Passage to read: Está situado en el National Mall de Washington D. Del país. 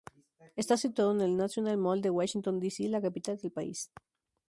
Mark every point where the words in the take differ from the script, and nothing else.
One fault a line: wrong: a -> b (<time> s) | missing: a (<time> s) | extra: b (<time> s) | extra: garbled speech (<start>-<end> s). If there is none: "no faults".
extra: C la capital (2.7 s)